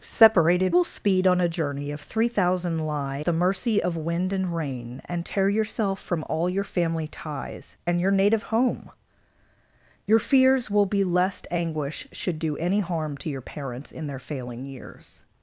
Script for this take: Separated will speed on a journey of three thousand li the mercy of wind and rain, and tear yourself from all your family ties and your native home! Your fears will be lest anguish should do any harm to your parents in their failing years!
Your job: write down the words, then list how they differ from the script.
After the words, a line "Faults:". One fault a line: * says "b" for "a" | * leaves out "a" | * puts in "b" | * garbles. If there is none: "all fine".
Separated will speed on a journey of three thousand li the mercy of wind and rain, and tear yourself from all your family ties and your native home! Your fears will be lest anguish should do any harm to your parents in their failing years!
Faults:
all fine